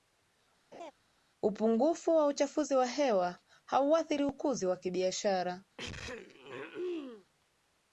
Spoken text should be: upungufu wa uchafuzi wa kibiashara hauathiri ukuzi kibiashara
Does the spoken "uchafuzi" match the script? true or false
true